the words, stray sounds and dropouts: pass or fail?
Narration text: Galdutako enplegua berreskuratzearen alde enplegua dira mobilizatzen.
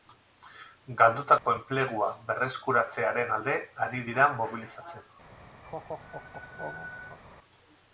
fail